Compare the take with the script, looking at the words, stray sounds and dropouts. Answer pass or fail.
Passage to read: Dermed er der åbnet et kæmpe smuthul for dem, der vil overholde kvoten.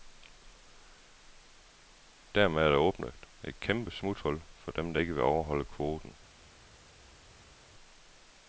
fail